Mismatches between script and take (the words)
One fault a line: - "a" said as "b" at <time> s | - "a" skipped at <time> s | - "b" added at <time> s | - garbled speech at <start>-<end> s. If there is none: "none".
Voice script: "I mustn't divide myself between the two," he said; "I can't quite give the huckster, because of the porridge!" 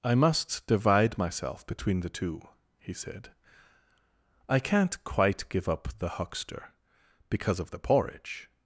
- "mustn't" said as "must" at 0.1 s
- "up" added at 5.7 s